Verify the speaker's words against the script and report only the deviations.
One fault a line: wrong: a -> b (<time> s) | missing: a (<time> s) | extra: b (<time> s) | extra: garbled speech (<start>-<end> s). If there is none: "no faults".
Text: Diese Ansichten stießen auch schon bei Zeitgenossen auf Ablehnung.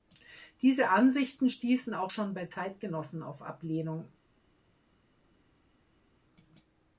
no faults